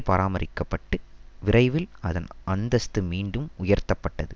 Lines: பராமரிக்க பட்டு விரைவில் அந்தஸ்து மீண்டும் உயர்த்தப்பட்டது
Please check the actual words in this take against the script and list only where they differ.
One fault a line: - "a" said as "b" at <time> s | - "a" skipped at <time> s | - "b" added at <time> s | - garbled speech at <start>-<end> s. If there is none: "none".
- "அதன்" added at 2.0 s